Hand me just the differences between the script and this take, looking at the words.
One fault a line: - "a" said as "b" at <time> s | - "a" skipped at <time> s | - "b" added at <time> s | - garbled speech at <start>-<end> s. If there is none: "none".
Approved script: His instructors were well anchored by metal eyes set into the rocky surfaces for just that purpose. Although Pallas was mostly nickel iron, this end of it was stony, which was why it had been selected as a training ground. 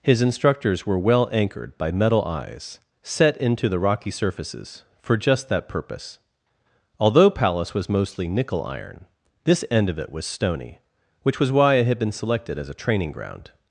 none